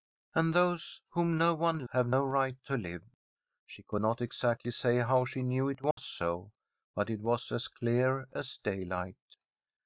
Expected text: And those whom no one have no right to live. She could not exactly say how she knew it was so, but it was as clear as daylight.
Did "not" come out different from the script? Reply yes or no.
no